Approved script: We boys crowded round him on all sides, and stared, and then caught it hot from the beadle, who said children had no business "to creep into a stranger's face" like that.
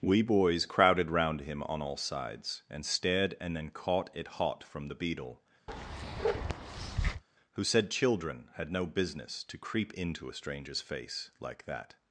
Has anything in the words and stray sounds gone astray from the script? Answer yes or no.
yes